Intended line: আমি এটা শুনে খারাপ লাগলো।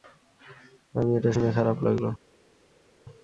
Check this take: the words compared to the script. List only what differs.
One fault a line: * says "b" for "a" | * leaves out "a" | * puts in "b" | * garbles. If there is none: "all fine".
all fine